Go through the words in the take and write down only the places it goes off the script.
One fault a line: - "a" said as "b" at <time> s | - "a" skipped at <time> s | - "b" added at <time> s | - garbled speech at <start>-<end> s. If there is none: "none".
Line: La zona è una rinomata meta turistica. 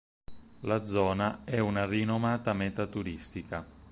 none